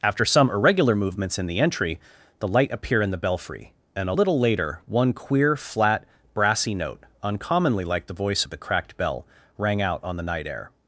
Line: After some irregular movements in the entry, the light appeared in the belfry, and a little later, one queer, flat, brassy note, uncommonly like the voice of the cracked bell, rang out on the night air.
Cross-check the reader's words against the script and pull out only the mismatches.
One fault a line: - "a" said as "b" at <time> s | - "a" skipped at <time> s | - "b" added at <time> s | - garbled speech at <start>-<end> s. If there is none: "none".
- "appeared" said as "appear" at 2.7 s